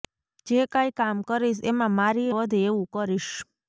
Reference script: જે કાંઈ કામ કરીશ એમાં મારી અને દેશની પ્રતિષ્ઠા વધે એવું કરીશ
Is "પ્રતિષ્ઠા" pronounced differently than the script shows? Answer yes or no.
yes